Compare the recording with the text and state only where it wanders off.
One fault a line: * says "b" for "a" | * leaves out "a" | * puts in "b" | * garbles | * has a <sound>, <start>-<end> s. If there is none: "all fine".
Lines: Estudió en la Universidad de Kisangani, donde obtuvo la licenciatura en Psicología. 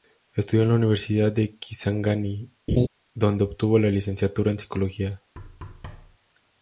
* has a laugh, 2.7-2.9 s
* has a thud, 5.4-6.2 s